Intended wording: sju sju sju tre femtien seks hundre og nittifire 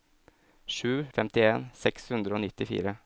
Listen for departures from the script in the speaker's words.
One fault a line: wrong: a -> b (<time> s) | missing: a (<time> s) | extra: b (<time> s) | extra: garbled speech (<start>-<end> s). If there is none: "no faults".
missing: sju sju tre (1.1 s)